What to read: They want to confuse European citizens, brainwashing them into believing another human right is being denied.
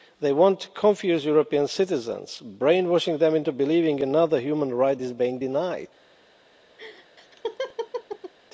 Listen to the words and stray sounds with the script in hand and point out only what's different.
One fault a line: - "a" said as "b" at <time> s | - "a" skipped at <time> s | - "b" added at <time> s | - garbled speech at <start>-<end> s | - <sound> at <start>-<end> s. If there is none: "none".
- laugh at 6.8-8.3 s